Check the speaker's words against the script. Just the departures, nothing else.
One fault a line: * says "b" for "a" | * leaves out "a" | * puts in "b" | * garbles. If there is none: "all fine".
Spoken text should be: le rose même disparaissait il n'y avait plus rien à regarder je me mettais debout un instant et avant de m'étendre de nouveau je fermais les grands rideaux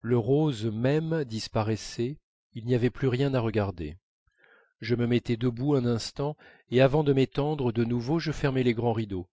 all fine